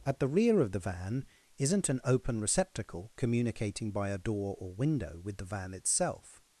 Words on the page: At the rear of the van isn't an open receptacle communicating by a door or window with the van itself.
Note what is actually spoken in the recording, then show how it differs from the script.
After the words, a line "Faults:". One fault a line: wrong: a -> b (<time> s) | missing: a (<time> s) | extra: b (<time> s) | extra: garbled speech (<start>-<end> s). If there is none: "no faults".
At the rear of the van isn't an open receptacle communicating by a door or window with the van itself.
Faults:
no faults